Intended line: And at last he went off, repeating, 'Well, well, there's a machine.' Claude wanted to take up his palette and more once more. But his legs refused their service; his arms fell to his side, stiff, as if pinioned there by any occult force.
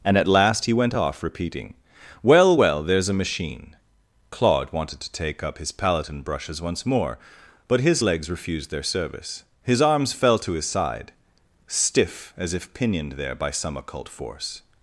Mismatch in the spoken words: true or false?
true